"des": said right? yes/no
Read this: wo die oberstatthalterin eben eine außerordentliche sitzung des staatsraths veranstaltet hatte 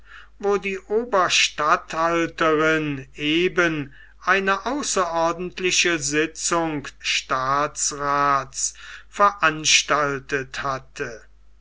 no